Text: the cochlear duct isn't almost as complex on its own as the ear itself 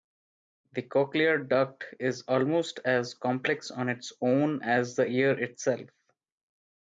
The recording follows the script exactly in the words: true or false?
false